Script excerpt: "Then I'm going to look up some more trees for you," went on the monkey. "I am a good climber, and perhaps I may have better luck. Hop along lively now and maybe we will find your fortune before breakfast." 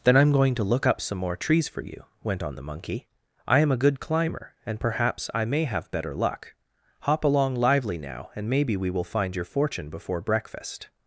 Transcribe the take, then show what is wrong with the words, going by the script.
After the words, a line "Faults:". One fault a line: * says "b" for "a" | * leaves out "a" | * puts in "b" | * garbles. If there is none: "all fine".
"Then I'm going to look up some more trees for you," went on the monkey. "I am a good climber, and perhaps I may have better luck. Hop along lively now and maybe we will find your fortune before breakfast."
Faults:
all fine